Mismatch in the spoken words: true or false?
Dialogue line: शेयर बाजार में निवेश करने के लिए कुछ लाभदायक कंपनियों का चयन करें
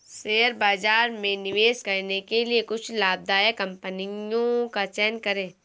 false